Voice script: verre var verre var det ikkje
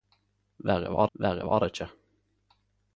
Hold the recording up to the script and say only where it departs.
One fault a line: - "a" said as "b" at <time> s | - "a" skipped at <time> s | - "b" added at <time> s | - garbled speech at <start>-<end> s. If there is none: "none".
none